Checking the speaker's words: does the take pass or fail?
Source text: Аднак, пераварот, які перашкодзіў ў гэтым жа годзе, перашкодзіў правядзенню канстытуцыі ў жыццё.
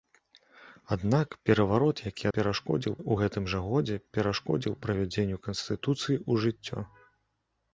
pass